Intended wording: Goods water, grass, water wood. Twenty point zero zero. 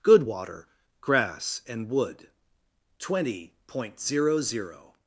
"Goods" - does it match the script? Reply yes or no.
no